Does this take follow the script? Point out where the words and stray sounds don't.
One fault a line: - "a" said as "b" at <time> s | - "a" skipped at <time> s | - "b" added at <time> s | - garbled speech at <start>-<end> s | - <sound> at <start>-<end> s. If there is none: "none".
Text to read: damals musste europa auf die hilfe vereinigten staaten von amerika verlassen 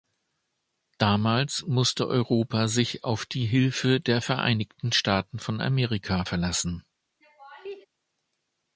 - "sich" added at 2.7 s
- "der" added at 4.0 s
- laugh at 7.2-7.9 s